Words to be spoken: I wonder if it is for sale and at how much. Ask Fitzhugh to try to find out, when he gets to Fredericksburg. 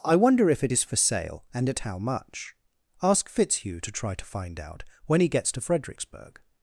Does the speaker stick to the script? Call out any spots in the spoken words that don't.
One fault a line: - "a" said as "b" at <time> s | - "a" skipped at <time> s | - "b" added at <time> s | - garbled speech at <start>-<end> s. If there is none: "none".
none